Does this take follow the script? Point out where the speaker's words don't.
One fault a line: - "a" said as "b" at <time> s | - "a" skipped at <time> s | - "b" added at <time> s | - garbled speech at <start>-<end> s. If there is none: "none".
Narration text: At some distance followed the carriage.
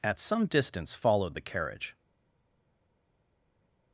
none